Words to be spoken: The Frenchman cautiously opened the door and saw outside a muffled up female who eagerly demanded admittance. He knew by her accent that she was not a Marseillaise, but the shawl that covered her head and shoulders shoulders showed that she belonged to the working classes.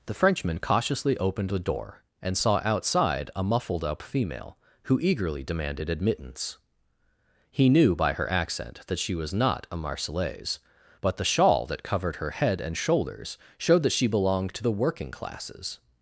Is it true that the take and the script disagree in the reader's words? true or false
true